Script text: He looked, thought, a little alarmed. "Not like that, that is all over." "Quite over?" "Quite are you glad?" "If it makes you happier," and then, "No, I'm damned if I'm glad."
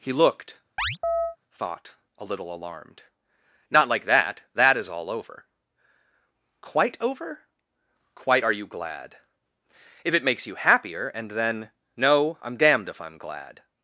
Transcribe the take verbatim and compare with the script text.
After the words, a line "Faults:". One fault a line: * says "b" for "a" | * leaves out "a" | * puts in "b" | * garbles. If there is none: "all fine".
He looked, thought, a little alarmed. "Not like that, that is all over." "Quite over?" "Quite are you glad?" "If it makes you happier," and then, "No, I'm damned if I'm glad."
Faults:
all fine